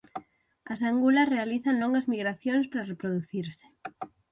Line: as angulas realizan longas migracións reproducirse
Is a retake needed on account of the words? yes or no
yes